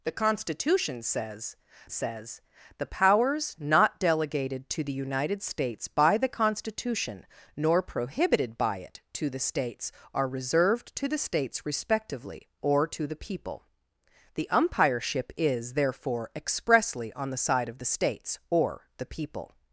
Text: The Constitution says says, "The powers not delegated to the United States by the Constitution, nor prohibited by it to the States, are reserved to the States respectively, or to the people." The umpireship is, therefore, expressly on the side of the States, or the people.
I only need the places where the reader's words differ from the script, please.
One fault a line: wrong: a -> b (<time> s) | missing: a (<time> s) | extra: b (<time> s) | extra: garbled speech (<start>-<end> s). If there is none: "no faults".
no faults